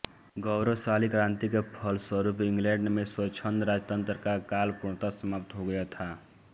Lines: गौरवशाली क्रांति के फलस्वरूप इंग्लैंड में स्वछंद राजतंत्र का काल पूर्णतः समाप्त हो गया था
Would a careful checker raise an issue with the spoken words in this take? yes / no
no